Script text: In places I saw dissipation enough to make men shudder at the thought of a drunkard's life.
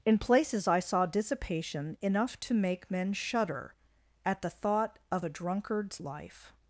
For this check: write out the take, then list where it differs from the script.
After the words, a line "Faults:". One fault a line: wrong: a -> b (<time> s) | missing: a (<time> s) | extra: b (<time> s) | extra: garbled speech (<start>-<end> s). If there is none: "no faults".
In places I saw dissipation enough to make men shudder at the thought of a drunkard's life.
Faults:
no faults